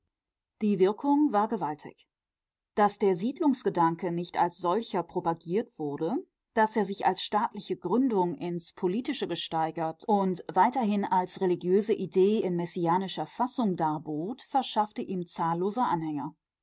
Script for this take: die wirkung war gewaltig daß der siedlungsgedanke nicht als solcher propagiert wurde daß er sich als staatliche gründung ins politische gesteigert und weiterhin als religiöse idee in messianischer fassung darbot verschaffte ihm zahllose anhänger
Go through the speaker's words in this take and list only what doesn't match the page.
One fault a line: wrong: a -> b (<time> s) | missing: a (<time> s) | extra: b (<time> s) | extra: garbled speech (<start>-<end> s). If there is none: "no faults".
no faults